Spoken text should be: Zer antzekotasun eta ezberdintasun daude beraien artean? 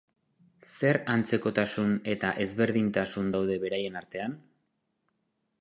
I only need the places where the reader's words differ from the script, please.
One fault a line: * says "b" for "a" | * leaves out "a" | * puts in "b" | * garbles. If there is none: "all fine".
all fine